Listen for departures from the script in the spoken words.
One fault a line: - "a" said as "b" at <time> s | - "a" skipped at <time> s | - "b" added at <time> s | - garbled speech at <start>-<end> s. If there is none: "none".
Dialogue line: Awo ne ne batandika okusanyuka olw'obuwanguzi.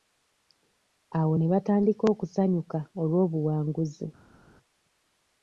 - "ne" skipped at 1.5 s